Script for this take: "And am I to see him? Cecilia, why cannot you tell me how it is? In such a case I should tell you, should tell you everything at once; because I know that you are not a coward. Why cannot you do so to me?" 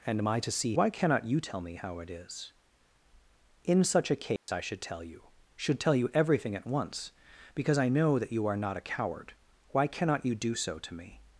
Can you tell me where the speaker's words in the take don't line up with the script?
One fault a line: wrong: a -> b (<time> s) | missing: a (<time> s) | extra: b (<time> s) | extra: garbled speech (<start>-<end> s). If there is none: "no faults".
missing: him Cecilia (0.8 s)